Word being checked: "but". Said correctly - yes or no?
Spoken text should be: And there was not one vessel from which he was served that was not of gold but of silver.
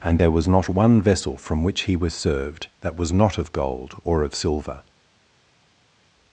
no